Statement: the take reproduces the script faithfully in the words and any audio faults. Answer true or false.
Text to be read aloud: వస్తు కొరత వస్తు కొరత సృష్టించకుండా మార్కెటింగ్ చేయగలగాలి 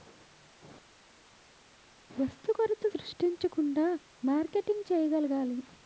false